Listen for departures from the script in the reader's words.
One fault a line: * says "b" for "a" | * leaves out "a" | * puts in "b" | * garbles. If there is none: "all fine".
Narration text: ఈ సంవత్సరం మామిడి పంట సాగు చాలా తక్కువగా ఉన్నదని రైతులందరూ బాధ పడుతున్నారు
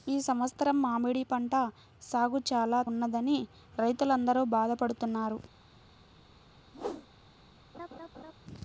* leaves out "తక్కువగా"